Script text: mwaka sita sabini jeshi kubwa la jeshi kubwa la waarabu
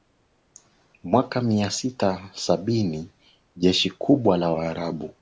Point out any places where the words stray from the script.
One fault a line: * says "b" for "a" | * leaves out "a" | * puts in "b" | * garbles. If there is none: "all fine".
* puts in "mia"
* leaves out "jeshi kubwa la"